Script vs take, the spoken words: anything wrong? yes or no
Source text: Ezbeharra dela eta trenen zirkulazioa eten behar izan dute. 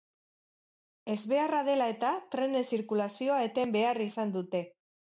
no